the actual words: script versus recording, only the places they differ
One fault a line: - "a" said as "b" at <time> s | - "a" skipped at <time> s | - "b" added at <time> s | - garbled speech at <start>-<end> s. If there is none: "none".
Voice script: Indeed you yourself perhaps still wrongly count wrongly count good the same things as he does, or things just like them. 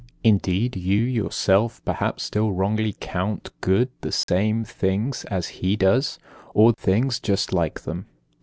- "wrongly count" skipped at 3.5 s